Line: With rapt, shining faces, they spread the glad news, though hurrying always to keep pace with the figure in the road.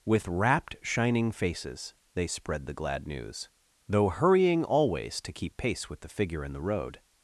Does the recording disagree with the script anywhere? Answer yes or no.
no